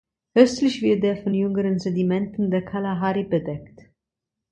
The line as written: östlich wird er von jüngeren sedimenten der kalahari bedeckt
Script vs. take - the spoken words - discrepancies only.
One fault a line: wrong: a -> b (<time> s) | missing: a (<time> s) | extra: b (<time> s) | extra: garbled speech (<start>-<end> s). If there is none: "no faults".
no faults